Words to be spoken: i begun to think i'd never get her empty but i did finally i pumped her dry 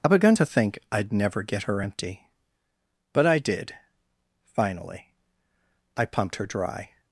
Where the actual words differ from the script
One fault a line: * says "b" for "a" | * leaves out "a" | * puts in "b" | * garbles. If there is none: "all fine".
all fine